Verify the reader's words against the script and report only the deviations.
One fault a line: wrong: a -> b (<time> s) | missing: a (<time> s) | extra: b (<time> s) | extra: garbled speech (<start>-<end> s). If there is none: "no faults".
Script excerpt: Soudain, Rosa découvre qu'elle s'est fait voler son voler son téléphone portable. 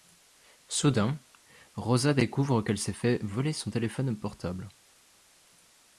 missing: voler son (3.7 s)